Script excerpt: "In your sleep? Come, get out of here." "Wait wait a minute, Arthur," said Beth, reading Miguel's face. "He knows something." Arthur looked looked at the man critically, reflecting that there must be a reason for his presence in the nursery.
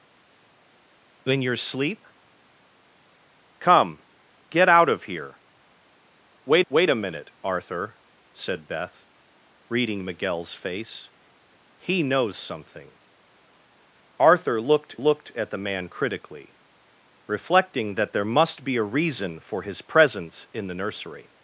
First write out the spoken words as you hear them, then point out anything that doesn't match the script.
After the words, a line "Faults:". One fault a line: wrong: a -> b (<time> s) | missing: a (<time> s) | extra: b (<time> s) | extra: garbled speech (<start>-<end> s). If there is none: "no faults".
"In your sleep? Come, get out of here." "Wait wait a minute, Arthur," said Beth, reading Miguel's face. "He knows something." Arthur looked looked at the man critically, reflecting that there must be a reason for his presence in the nursery.
Faults:
no faults